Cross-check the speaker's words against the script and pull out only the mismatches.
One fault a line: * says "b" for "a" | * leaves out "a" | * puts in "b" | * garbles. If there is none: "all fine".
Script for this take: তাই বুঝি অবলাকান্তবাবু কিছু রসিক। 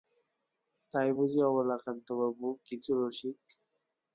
all fine